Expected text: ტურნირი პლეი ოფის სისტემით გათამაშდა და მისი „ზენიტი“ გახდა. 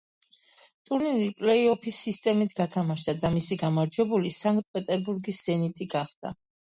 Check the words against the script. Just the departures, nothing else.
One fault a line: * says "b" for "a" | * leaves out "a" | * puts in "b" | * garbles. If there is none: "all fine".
* puts in "გამარჯვებული სანქტ პეტერბურგის"